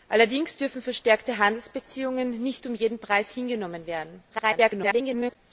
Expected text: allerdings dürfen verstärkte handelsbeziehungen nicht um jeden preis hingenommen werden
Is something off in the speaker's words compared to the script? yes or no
yes